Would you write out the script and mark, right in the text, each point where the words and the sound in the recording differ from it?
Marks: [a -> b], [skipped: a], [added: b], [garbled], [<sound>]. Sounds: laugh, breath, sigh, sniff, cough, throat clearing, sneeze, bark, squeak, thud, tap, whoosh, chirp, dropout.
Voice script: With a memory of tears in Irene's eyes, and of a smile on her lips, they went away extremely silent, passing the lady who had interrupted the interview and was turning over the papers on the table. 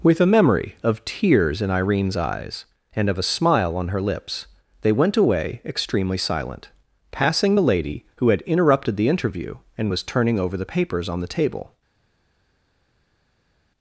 With a memory of tears in Irene's eyes, and of a smile on her lips, they went away extremely silent, passing the lady who had interrupted the interview and was turning over the papers on the table.